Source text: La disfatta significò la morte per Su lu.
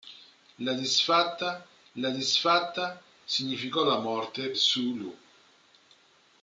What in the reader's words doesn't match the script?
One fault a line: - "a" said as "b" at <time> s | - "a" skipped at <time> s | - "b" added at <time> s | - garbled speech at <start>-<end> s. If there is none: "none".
- "la disfatta" added at 1.9 s
- "per" skipped at 4.5 s